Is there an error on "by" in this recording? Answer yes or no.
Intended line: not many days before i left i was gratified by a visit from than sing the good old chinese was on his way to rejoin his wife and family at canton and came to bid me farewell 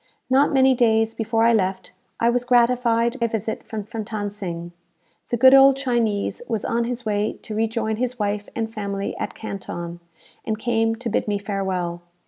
yes